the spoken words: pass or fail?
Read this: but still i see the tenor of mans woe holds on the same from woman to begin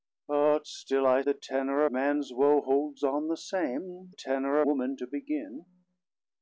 fail